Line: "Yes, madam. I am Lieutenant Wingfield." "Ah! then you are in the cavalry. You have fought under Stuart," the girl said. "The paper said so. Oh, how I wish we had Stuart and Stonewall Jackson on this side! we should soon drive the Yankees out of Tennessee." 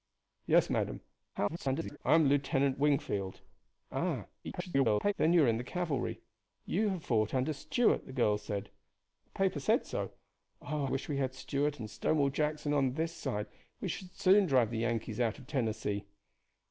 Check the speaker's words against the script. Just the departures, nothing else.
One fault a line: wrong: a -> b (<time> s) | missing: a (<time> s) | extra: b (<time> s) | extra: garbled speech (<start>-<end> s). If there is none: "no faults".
extra: garbled speech (1.3-2.0 s)
extra: garbled speech (4.4-5.1 s)
missing: how I (10.9 s)